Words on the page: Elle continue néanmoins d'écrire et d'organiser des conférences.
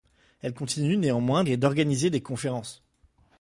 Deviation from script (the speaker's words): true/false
true